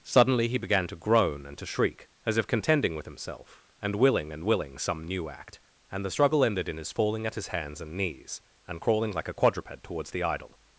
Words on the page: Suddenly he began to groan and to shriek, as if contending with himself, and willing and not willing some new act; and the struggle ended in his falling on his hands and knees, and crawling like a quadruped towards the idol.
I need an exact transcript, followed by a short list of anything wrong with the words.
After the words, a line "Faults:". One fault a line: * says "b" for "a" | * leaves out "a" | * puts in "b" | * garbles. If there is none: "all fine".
Suddenly he began to groan and to shriek, as if contending with himself, and willing and willing some new act; and the struggle ended in his falling at his hands and knees, and crawling like a quadruped towards the idol.
Faults:
* leaves out "not"
* says "at" for "on"